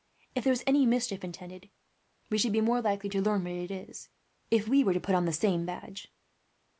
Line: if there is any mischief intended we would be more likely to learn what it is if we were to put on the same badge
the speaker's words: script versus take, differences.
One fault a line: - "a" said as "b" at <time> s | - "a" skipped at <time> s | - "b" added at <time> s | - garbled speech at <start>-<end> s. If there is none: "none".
- "would" said as "should" at 2.4 s